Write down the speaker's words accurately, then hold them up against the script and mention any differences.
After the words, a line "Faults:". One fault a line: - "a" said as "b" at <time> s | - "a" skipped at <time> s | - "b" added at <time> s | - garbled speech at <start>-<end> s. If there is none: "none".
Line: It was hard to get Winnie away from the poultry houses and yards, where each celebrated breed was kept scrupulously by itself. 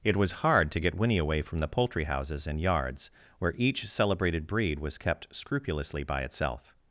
It was hard to get Winnie away from the poultry houses and yards, where each celebrated breed was kept scrupulously by itself.
Faults:
none